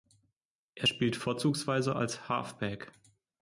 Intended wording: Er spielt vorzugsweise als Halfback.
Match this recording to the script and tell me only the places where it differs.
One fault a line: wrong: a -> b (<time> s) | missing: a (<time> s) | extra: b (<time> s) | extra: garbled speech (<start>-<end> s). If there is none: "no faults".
no faults